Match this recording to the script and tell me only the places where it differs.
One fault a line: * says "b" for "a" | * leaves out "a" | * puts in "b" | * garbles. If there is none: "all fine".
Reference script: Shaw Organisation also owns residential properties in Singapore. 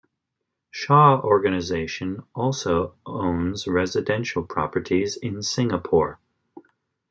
all fine